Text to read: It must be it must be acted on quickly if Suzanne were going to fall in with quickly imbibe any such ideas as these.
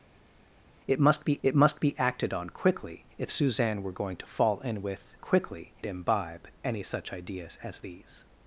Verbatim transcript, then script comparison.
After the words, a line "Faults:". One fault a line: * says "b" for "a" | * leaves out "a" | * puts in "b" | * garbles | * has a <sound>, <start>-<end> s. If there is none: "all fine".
It must be it must be acted on quickly if Suzanne were going to fall in with quickly imbibe any such ideas as these.
Faults:
all fine